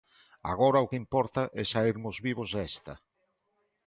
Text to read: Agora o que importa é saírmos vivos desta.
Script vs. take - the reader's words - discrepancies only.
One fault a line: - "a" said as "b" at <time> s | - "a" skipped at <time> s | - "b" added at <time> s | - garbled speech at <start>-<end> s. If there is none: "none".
none